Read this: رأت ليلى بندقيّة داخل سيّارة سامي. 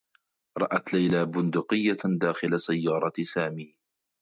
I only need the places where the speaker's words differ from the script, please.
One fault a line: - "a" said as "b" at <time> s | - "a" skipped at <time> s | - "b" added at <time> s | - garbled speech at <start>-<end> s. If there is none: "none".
none